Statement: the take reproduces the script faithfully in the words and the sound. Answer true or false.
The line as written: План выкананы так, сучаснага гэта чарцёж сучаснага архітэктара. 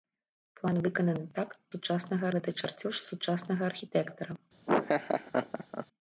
false